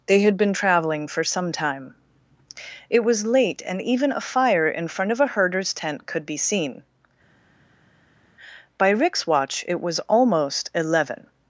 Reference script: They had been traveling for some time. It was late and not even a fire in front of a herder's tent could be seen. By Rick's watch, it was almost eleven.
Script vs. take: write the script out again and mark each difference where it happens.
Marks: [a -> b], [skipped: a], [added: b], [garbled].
They had been traveling for some time. It was late and [skipped: not] even a fire in front of a herder's tent could be seen. By Rick's watch, it was almost eleven.